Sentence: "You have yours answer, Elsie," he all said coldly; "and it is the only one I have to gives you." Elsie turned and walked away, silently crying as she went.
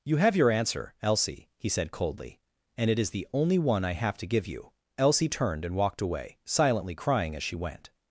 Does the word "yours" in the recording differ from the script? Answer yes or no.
yes